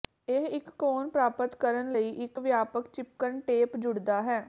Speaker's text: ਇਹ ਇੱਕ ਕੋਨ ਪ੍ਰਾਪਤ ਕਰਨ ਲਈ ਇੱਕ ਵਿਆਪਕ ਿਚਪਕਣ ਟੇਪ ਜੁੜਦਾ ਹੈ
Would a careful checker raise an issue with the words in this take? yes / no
no